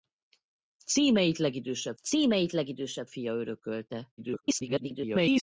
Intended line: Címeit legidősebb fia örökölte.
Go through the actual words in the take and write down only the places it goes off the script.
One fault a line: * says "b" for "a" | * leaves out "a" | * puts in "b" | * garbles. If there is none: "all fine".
* puts in "címeit legidősebb"
* garbles